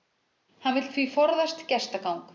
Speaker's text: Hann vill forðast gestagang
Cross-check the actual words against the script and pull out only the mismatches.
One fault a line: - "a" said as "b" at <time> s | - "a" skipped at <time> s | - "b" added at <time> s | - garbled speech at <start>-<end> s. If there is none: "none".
- "því" added at 0.9 s